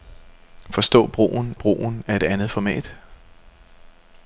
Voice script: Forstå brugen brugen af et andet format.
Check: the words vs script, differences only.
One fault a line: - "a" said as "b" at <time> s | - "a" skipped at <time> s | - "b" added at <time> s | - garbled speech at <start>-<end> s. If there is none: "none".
none